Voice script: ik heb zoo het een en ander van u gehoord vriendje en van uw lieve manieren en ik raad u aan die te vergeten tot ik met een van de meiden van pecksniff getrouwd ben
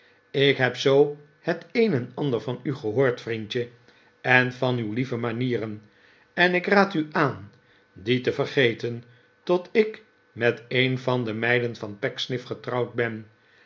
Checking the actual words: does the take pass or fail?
pass